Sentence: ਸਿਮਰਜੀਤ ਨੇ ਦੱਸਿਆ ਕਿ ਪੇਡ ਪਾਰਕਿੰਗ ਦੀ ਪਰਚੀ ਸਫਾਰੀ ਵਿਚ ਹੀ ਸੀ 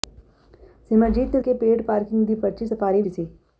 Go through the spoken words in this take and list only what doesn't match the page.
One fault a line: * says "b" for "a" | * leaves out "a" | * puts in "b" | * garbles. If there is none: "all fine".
* leaves out "ਦੱਸਿਆ"
* leaves out "ਵਿਚ"